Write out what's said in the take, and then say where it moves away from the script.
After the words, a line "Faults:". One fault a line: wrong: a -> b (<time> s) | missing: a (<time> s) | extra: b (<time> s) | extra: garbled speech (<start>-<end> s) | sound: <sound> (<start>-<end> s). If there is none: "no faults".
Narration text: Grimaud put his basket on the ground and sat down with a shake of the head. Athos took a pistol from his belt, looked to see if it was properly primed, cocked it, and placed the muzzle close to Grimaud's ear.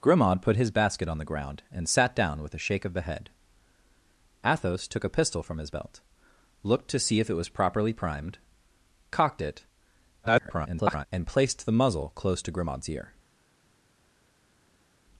Grimaud put his basket on the ground and sat down with a shake of the head. Athos took a pistol from his belt, looked to see if it was properly primed, cocked it, [garbled] and placed the muzzle close to Grimaud's ear.
Faults:
extra: garbled speech (10.2-11.1 s)